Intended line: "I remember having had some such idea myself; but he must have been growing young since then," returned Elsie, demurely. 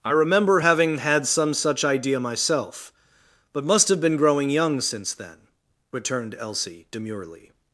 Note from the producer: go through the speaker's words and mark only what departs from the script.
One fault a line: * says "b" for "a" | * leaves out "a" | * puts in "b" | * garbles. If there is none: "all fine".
* leaves out "he"